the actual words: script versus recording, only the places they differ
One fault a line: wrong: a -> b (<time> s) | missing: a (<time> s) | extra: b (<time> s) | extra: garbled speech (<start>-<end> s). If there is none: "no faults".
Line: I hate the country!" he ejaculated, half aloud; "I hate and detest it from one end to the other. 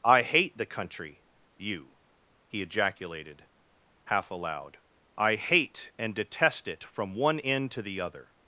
extra: you (1.6 s)